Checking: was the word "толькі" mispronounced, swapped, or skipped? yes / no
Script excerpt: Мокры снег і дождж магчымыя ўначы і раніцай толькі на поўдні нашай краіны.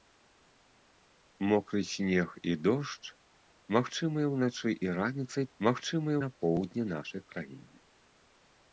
yes